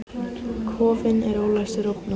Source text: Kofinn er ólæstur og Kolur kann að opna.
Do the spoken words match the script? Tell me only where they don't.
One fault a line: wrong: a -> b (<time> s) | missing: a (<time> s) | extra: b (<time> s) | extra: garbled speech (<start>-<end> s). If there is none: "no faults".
missing: Kolur kann að (1.9 s)